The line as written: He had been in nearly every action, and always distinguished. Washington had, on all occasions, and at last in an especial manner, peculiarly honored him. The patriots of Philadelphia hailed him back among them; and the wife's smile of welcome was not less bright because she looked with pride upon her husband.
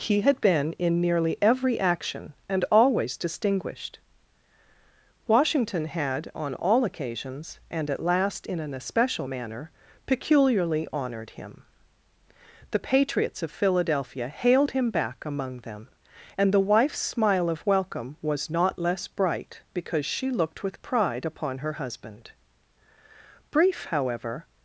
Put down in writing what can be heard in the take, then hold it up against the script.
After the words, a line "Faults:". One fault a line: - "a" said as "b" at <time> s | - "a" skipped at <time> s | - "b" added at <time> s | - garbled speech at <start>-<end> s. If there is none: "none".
He had been in nearly every action, and always distinguished. Washington had, on all occasions, and at last in an especial manner, peculiarly honored him. The patriots of Philadelphia hailed him back among them; and the wife's smile of welcome was not less bright because she looked with pride upon her husband. Brief, however
Faults:
- "Brief however" added at 23.5 s